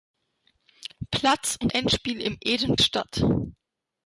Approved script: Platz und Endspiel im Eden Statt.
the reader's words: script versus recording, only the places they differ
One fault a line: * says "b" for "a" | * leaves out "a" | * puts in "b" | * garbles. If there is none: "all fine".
all fine